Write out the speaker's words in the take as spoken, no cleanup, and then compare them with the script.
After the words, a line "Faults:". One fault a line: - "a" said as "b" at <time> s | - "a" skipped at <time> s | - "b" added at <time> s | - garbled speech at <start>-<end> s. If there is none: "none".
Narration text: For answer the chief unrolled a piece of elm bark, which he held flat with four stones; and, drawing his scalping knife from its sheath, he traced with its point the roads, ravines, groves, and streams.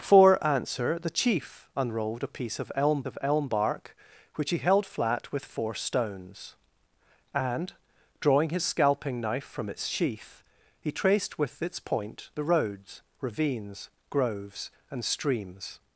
For answer the chief unrolled a piece of elm of elm bark, which he held flat with four stones; and, drawing his scalping knife from its sheath, he traced with its point the roads, ravines, groves, and streams.
Faults:
- "of elm" added at 3.0 s